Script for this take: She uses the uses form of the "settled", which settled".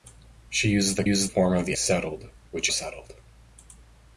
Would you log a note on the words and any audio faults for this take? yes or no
no